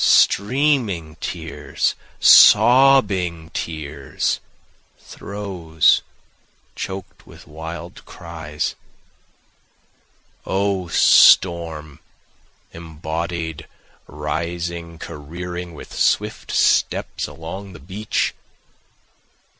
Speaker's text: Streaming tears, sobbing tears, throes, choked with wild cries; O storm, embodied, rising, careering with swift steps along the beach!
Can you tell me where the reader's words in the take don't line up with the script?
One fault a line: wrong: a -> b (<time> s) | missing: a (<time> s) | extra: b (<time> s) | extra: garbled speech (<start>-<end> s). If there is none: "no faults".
no faults